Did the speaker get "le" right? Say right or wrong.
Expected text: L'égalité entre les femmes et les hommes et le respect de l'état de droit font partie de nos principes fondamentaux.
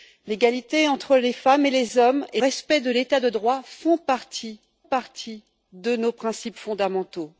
wrong